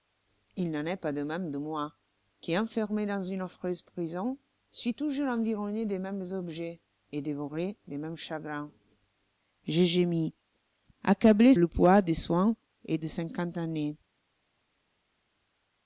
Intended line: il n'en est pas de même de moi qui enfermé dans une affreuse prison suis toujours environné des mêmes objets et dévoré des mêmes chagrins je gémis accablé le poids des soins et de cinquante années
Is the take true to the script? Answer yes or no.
yes